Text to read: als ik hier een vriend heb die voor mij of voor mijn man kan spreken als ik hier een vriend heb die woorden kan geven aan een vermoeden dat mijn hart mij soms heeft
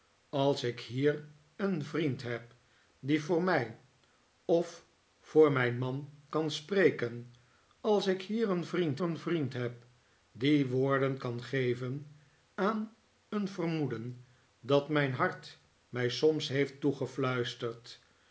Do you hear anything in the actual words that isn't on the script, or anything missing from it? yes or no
yes